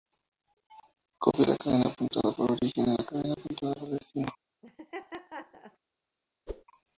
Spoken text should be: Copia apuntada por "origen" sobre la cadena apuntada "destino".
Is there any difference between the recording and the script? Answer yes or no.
yes